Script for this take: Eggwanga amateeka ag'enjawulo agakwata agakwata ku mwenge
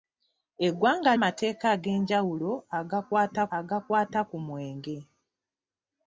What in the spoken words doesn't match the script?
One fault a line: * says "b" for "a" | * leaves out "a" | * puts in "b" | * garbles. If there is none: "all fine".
all fine